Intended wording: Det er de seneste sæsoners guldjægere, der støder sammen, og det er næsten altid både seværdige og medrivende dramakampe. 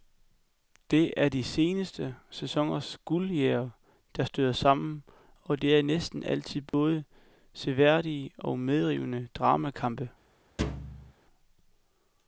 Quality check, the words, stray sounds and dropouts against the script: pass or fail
fail